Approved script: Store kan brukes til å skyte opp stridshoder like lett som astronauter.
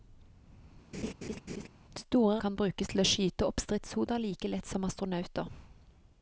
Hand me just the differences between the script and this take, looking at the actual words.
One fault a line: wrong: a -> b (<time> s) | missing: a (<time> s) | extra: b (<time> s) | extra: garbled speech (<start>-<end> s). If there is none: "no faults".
no faults